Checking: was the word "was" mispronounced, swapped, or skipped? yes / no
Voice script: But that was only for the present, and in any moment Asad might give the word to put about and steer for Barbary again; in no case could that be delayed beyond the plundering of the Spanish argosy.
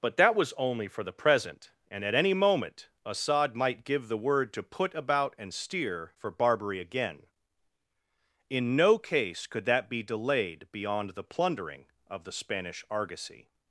no